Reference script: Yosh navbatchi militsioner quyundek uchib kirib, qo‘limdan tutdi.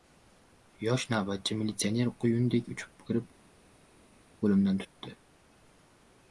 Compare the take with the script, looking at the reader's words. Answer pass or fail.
pass